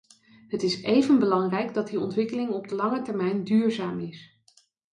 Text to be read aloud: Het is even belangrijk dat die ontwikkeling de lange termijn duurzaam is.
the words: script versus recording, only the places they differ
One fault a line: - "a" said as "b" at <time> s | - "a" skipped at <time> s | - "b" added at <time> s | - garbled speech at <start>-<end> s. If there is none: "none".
- "op" added at 2.5 s